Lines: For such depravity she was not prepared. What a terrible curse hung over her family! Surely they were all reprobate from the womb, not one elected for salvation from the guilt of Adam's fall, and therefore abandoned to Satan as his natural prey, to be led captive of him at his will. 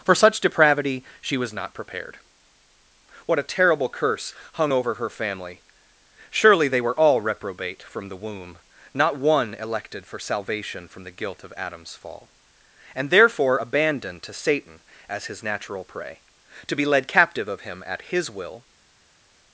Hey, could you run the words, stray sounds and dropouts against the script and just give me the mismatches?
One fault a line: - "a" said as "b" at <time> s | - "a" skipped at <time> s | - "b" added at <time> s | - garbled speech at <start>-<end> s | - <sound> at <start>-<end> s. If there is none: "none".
none